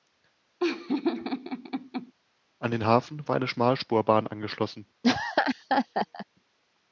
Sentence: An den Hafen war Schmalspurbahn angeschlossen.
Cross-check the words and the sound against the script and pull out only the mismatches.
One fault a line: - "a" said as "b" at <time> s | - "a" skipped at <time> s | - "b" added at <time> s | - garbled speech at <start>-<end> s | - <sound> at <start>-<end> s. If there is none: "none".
- laugh at 0.6-2.1 s
- "eine" added at 3.3 s
- laugh at 5.0-6.3 s